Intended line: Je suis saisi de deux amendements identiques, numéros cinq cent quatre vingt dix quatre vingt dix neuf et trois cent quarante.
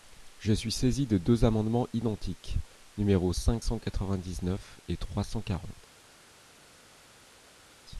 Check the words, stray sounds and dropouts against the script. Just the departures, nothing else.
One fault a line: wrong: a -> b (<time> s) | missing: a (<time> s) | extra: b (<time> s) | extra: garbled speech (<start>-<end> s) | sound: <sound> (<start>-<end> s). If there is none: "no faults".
missing: quatre vingt dix (4.4 s)